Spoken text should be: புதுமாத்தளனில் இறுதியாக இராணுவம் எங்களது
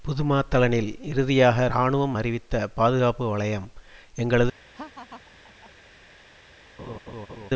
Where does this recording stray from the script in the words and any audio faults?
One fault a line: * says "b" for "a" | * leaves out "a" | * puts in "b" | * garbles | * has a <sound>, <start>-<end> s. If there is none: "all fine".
* puts in "அறிவித்த பாதுகாப்பு வலயம்"
* has a laugh, 4.7-5.7 s
* has a laugh, 6.8-7.5 s